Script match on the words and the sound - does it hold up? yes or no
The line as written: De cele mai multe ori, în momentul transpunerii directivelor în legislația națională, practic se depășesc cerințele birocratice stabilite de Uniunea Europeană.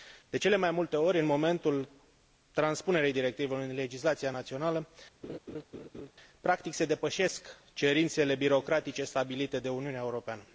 no